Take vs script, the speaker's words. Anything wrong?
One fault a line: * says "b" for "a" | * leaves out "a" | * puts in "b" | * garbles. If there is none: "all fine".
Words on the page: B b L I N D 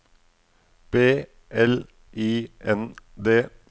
* leaves out "b"